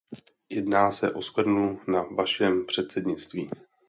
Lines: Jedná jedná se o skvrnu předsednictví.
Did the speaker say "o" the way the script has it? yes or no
yes